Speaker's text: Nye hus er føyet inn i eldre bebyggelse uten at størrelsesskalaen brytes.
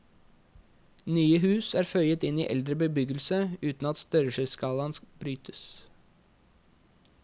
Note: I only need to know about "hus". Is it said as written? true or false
true